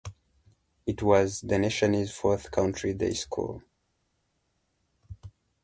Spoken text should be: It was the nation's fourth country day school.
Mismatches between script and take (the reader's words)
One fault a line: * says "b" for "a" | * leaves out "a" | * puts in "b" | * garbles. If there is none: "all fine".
all fine